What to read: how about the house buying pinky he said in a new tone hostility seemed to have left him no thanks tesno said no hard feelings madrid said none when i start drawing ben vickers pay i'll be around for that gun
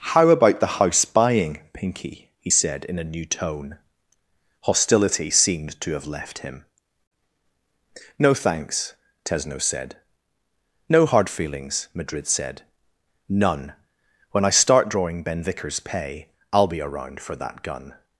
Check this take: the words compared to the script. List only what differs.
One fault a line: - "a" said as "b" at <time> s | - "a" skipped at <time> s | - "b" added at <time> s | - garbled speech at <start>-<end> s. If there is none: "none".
none